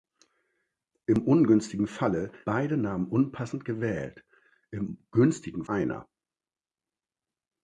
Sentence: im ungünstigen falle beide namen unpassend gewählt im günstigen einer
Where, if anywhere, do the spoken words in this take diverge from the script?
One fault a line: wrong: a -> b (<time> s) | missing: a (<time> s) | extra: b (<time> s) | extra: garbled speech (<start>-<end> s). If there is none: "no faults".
no faults